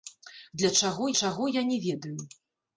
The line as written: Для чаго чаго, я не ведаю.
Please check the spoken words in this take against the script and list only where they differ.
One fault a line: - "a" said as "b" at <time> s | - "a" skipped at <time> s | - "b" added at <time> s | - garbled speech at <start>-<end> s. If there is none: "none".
none